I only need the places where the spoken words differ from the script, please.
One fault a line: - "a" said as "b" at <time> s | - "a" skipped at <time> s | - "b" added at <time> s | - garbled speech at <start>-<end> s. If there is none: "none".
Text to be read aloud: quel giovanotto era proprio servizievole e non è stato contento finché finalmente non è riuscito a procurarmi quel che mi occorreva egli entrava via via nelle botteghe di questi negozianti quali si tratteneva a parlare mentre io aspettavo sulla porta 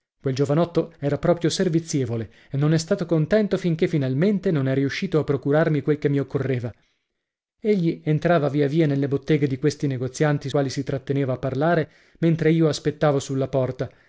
none